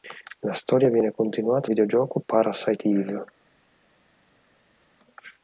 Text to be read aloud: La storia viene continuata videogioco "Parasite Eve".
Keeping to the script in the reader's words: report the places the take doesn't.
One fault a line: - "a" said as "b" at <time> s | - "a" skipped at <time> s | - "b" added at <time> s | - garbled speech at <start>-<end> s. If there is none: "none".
none